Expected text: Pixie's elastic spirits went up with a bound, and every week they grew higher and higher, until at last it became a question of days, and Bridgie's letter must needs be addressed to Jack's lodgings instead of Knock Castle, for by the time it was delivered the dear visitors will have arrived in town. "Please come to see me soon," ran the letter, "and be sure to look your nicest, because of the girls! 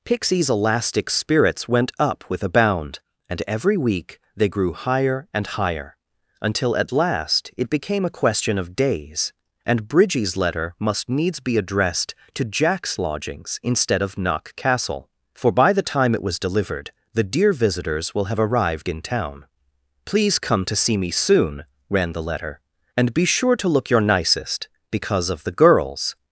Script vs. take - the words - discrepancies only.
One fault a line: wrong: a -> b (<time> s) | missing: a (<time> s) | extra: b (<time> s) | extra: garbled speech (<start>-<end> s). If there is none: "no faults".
no faults